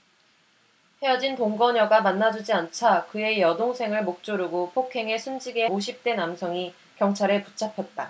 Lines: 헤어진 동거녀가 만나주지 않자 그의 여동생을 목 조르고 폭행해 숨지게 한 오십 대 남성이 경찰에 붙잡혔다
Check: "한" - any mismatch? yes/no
yes